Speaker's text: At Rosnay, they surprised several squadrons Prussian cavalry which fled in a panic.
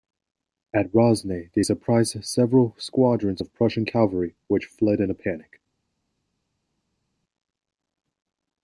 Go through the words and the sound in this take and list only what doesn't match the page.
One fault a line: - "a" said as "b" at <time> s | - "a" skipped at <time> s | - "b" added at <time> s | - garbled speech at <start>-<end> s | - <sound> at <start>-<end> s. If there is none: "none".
- "of" added at 3.4 s